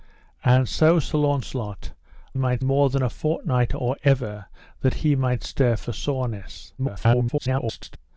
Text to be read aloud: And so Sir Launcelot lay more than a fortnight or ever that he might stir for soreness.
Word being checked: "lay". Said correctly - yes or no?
no